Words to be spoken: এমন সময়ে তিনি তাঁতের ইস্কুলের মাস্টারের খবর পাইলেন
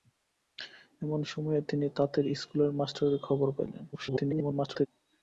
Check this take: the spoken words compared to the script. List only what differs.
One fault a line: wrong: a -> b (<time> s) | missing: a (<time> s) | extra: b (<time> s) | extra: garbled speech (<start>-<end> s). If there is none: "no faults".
extra: garbled speech (3.9-4.9 s)